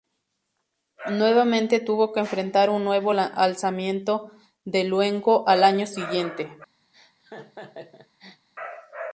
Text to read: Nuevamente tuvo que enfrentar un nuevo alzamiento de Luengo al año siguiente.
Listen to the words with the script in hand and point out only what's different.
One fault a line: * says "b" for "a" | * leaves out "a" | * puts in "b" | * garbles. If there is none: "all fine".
all fine